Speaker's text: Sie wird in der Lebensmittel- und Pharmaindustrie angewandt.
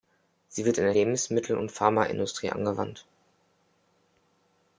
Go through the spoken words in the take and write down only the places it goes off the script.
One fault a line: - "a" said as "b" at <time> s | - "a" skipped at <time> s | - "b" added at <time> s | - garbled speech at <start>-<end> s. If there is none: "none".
none